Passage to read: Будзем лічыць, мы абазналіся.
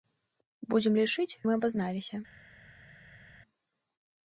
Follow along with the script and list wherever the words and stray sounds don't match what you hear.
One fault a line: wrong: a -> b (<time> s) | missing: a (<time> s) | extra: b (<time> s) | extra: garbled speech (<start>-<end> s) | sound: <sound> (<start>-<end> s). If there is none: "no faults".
no faults